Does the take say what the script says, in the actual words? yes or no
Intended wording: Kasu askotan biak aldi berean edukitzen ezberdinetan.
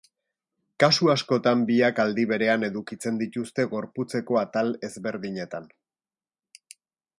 no